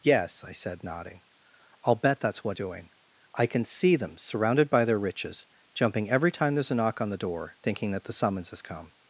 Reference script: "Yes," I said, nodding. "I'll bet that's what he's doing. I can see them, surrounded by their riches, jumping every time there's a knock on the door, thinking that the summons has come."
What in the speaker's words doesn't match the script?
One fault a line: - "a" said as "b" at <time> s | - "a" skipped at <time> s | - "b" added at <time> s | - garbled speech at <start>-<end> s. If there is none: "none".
- "he's" skipped at 2.6 s